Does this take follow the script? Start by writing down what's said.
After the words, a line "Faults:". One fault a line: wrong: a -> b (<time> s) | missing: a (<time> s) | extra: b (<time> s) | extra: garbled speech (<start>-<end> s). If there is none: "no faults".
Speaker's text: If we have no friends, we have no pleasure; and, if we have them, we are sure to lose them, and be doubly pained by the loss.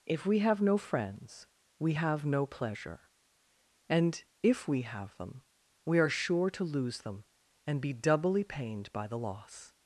If we have no friends, we have no pleasure; and, if we have them, we are sure to lose them, and be doubly pained by the loss.
Faults:
no faults